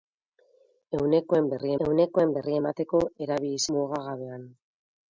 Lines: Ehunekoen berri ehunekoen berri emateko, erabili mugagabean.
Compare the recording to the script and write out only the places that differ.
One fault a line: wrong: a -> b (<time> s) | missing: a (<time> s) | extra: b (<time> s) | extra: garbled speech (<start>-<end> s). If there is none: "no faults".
no faults